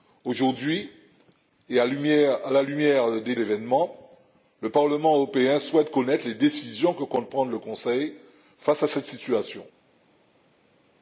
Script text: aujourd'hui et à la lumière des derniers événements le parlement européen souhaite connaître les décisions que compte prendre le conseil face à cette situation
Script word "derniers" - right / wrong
wrong